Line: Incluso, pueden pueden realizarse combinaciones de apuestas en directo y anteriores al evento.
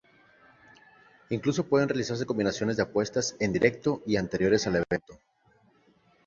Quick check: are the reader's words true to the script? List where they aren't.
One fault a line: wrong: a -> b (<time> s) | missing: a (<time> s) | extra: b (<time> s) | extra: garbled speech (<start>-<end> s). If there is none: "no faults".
missing: pueden (1.9 s)